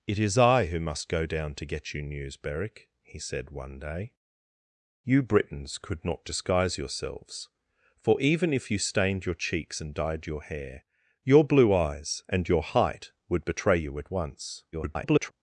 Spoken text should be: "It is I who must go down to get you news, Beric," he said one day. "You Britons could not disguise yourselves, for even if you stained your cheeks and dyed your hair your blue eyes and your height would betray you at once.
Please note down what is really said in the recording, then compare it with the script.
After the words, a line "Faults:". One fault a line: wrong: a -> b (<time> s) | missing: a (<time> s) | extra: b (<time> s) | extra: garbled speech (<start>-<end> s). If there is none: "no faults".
"It is I who must go down to get you news, Beric," he said one day. "You Britons could not disguise yourselves, for even if you stained your cheeks and dyed your hair your blue eyes and your height would betray you at once. [garbled]
Faults:
extra: garbled speech (14.7-15.3 s)